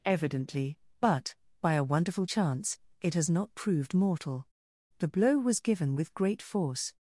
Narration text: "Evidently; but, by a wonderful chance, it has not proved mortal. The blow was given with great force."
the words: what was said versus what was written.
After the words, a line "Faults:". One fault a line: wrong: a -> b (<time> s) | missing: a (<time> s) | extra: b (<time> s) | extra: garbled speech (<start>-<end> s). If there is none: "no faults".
"Evidently; but, by a wonderful chance, it has not proved mortal. The blow was given with great force."
Faults:
no faults